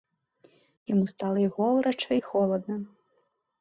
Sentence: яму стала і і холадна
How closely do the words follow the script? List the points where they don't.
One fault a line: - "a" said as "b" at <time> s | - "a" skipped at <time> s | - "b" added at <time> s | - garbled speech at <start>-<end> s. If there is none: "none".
- "горача" added at 1.6 s